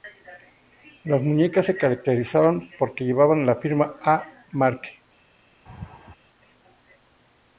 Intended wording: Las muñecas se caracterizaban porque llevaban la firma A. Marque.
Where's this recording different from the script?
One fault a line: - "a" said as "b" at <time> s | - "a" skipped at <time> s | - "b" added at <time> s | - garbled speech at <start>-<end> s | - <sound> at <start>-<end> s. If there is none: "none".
- laugh at 5.7-6.2 s